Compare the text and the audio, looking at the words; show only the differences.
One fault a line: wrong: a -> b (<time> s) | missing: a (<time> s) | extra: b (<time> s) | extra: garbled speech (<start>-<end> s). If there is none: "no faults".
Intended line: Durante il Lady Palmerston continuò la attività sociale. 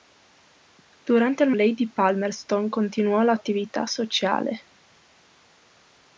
no faults